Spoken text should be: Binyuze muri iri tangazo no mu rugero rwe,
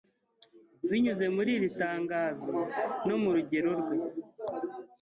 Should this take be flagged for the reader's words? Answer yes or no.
no